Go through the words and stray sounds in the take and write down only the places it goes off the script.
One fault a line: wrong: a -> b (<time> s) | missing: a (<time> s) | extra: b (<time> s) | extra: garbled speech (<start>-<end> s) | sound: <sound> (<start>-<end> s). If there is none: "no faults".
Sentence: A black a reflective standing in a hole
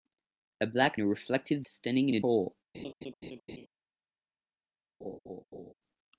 sound: laugh (2.7-3.7 s)
sound: laugh (5.0-5.7 s)